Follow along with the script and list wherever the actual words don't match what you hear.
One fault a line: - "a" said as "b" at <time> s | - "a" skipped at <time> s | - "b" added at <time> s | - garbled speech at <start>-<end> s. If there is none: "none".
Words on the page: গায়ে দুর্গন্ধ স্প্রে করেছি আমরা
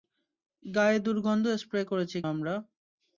none